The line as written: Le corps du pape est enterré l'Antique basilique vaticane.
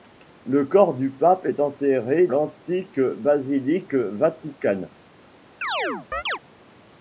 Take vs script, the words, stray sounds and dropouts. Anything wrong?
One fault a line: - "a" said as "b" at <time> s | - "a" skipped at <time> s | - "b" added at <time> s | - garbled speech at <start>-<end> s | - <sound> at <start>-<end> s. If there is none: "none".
- chirp at 5.6-6.4 s